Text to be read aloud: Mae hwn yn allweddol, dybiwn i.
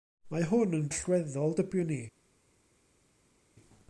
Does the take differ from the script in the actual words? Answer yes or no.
no